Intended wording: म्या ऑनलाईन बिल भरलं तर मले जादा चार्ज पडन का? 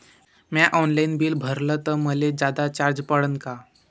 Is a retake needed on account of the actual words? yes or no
no